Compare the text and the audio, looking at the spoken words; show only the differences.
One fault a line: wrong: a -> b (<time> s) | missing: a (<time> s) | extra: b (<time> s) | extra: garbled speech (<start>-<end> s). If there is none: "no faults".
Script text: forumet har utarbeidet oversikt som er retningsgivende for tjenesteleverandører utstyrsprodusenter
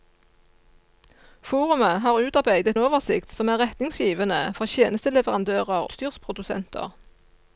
no faults